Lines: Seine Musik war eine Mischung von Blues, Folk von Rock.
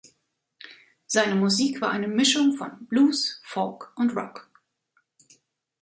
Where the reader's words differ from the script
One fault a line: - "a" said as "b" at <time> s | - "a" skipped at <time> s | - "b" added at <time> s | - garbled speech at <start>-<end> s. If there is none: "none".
- "von" said as "und" at 4.0 s